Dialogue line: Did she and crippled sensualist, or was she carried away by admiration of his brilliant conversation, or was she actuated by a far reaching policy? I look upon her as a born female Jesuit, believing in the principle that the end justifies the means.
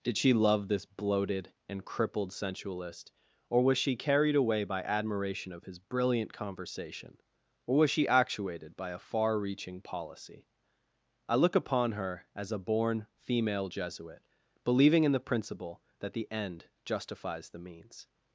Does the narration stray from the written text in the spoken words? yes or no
yes